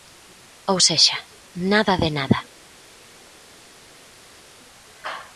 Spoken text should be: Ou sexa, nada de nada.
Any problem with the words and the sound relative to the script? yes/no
no